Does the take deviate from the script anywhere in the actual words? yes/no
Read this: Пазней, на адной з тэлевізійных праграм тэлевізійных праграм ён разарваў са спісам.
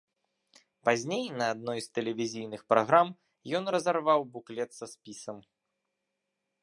yes